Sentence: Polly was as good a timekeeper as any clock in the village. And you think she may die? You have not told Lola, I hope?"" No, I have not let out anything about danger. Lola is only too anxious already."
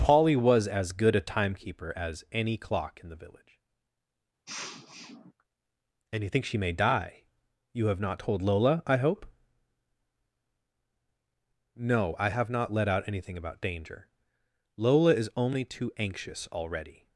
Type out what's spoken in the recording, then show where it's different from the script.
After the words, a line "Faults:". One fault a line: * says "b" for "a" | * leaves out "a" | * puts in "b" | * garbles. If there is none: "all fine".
Polly was as good a timekeeper as any clock in the village. And you think she may die? You have not told Lola, I hope?"" No, I have not let out anything about danger. Lola is only too anxious already."
Faults:
all fine